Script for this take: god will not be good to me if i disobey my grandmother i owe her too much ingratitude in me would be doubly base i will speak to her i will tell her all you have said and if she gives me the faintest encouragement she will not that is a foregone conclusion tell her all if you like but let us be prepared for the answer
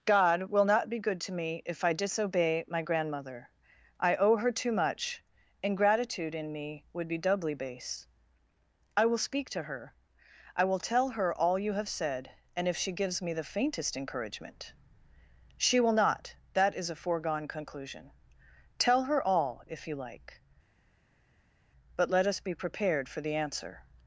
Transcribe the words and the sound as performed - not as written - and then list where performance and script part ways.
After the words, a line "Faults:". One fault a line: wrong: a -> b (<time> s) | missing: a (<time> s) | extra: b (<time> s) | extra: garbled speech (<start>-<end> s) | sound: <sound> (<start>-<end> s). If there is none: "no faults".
god will not be good to me if i disobey my grandmother i owe her too much ingratitude in me would be doubly base i will speak to her i will tell her all you have said and if she gives me the faintest encouragement she will not that is a foregone conclusion tell her all if you like but let us be prepared for the answer
Faults:
no faults